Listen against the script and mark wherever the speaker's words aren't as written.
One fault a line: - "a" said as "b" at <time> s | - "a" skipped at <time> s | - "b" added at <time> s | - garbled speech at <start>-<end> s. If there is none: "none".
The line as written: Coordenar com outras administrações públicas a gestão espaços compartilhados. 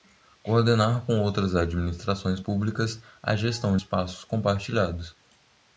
none